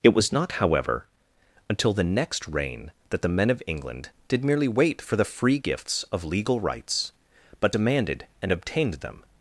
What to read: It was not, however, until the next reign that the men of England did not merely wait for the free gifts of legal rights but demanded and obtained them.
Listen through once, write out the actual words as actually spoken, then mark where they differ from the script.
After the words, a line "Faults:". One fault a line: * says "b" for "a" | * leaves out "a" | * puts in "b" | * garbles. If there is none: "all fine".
It was not, however, until the next reign that the men of England did merely wait for the free gifts of legal rights but demanded and obtained them.
Faults:
* leaves out "not"